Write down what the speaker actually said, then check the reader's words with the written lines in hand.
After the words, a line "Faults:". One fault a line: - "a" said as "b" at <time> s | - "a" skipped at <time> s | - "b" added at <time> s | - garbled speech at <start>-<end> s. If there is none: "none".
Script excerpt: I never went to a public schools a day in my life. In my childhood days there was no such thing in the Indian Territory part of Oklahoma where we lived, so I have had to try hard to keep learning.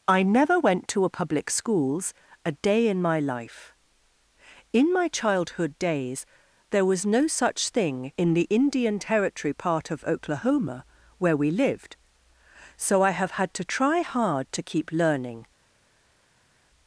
I never went to a public schools a day in my life. In my childhood days there was no such thing in the Indian Territory part of Oklahoma where we lived, so I have had to try hard to keep learning.
Faults:
none